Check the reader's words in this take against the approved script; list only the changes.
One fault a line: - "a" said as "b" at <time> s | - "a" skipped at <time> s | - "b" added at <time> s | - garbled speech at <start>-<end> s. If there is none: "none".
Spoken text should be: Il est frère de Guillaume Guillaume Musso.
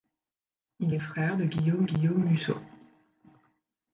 none